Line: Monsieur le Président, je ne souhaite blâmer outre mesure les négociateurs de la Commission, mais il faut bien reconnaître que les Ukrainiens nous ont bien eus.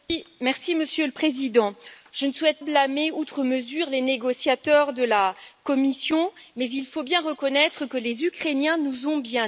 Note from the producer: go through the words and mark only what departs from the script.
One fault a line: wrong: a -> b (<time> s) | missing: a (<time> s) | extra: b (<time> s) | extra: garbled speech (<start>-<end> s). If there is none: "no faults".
no faults